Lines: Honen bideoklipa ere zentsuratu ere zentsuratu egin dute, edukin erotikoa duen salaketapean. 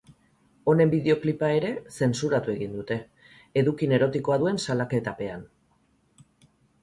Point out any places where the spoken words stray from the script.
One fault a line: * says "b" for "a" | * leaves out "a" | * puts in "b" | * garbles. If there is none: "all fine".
* leaves out "ere zentsuratu"